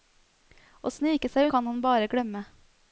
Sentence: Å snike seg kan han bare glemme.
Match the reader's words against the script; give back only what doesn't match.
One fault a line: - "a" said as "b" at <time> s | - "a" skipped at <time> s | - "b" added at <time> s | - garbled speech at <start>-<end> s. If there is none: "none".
none